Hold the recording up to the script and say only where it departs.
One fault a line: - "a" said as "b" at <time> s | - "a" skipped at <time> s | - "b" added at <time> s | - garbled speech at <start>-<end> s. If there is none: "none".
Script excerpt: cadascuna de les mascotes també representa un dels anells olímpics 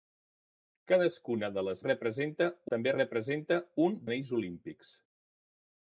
- "mascotes" said as "representa" at 1.9 s
- "dels" skipped at 4.0 s